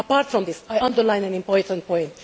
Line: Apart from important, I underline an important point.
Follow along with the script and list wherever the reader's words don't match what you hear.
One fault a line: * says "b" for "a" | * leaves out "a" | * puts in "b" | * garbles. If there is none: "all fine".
* says "this" for "important"